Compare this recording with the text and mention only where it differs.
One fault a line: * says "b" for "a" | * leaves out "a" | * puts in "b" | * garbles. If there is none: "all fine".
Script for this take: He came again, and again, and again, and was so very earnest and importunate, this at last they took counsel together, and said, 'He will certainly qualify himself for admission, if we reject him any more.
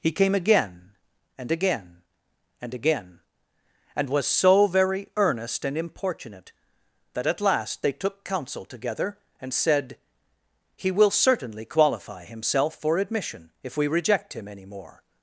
* says "that" for "this"